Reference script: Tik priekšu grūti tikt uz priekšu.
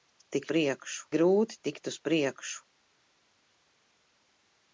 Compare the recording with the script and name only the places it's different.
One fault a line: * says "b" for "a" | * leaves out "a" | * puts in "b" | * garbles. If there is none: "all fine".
all fine